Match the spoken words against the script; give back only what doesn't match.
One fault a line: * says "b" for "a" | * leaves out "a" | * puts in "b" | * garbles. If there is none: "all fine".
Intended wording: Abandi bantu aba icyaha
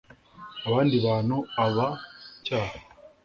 all fine